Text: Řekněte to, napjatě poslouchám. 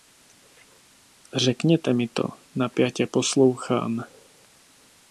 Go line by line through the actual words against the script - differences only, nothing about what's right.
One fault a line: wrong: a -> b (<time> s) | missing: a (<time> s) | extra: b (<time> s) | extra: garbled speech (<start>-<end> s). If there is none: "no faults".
extra: mi (1.9 s)